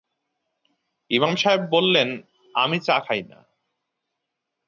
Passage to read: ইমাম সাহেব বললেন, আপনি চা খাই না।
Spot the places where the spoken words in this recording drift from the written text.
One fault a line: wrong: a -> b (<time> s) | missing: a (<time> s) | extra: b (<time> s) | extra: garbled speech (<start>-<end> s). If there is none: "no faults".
wrong: আপনি -> আমি (2.5 s)